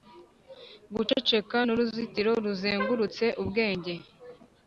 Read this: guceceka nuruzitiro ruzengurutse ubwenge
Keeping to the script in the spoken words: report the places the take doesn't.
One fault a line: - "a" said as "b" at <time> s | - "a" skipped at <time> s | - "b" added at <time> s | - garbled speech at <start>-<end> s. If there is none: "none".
none